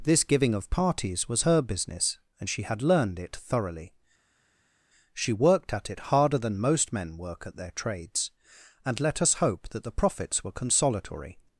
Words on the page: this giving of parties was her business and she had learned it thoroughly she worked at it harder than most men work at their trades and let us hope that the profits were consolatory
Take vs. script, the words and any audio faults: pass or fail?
pass